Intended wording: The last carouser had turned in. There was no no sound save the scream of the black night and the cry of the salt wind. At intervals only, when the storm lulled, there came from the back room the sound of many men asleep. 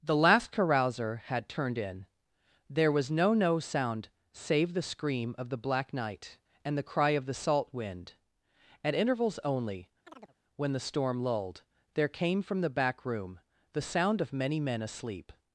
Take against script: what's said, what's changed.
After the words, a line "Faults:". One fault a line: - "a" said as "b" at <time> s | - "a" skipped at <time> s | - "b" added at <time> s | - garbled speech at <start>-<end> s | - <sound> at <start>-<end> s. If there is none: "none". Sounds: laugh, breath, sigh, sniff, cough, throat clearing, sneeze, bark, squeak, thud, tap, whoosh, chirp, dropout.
The last carouser had turned in. There was no no sound save the scream of the black night and the cry of the salt wind. At intervals only, when the storm lulled, there came from the back room the sound of many men asleep.
Faults:
- chirp at 10.1-10.3 s